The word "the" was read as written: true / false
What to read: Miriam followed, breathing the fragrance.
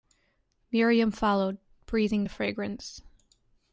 true